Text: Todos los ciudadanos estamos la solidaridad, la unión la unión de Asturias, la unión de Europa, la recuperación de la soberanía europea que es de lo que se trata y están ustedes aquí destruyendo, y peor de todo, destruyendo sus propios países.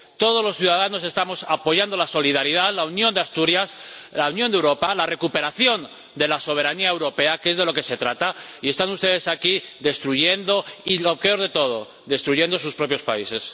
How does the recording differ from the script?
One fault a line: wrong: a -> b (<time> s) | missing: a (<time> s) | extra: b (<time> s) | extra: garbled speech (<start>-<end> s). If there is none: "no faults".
extra: apoyando (1.5 s)
missing: la unión (3.1 s)
extra: lo (11.0 s)